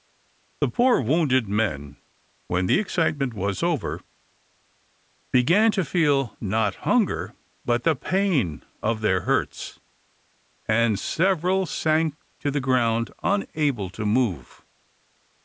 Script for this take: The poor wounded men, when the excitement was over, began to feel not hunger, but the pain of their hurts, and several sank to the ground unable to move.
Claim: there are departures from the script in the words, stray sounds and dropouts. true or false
false